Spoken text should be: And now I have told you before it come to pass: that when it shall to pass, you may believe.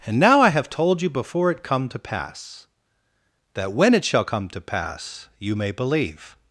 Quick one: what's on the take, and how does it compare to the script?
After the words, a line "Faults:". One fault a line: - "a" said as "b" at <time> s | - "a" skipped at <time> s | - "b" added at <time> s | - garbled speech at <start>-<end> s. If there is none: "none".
And now I have told you before it come to pass: that when it shall come to pass, you may believe.
Faults:
- "come" added at 4.2 s